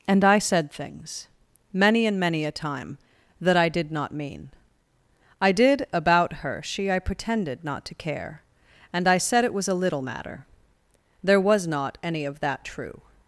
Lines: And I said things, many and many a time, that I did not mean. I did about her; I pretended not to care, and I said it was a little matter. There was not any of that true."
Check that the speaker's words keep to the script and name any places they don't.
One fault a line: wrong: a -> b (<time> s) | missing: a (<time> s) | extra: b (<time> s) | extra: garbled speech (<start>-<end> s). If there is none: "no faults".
extra: she (6.6 s)